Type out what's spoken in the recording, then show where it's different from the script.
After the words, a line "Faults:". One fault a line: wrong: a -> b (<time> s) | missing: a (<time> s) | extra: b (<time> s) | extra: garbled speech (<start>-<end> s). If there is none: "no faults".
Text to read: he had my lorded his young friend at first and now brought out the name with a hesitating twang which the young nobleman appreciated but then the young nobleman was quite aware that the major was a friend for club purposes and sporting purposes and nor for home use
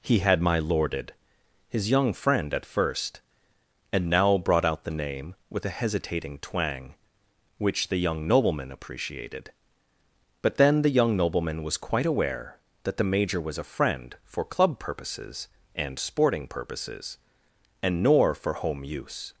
he had my lorded his young friend at first and now brought out the name with a hesitating twang which the young nobleman appreciated but then the young nobleman was quite aware that the major was a friend for club purposes and sporting purposes and nor for home use
Faults:
no faults